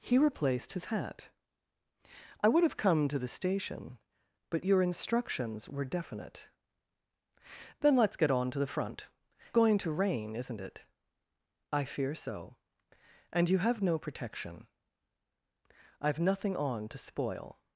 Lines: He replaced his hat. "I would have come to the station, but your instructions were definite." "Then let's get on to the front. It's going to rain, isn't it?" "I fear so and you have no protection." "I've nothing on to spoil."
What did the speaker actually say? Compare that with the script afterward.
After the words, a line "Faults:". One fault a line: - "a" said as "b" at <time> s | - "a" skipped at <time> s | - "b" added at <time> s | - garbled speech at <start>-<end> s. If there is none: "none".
He replaced his hat. "I would have come to the station, but your instructions were definite." "Then let's get on to the front. Going to rain, isn't it?" "I fear so and you have no protection." "I've nothing on to spoil."
Faults:
- "It's" skipped at 9.1 s